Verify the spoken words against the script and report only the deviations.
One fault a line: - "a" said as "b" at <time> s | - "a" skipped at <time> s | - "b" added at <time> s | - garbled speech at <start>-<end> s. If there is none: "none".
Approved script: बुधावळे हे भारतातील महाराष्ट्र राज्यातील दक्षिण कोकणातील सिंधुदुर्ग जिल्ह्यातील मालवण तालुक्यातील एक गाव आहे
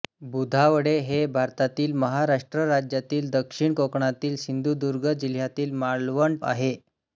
- "तालुक्यातील एक गाव" skipped at 6.4 s